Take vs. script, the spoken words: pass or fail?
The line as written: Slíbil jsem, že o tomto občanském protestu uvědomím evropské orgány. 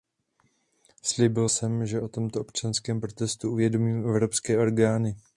pass